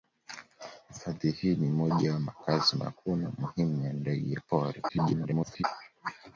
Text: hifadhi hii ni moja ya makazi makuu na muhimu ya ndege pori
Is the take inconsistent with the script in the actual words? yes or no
yes